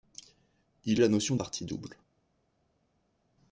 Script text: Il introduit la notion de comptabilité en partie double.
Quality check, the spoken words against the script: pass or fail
fail